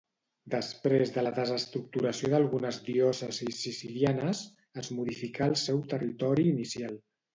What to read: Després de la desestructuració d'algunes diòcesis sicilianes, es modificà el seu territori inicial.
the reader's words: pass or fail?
pass